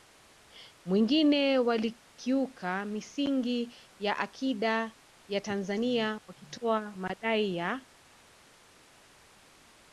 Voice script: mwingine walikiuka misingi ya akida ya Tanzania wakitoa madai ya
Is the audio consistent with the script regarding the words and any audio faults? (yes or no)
yes